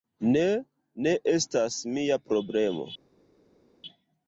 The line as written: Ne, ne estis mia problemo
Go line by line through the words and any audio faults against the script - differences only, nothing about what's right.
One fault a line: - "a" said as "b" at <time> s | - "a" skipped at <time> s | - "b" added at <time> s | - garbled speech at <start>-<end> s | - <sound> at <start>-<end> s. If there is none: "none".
- "estis" said as "estas" at 1.3 s